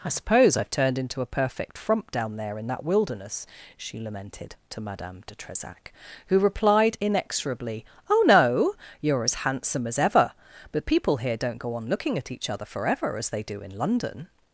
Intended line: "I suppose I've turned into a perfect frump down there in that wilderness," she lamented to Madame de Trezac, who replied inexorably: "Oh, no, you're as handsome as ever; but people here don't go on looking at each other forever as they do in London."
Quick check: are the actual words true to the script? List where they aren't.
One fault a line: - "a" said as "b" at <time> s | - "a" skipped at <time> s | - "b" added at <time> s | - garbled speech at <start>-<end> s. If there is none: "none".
none